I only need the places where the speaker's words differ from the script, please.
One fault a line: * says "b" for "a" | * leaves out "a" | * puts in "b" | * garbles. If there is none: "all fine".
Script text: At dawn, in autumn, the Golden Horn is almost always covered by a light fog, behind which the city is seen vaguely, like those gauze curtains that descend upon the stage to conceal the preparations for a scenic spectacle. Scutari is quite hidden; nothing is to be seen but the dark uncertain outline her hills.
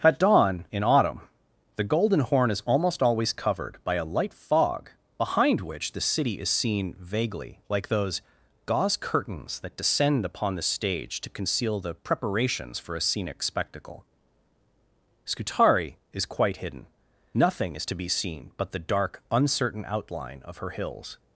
* puts in "of"